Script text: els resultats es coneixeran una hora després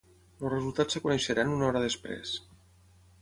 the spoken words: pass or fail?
pass